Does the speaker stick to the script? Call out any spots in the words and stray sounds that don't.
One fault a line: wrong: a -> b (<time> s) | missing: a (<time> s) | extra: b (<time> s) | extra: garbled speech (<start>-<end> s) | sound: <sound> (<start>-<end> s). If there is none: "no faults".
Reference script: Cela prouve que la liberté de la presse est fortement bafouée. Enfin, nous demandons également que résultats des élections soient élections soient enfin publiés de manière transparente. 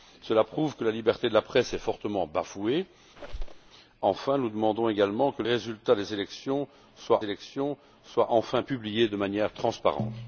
sound: squeak (3.2-3.7 s)